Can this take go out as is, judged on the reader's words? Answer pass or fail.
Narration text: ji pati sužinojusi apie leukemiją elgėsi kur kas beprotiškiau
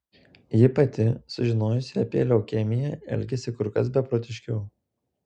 pass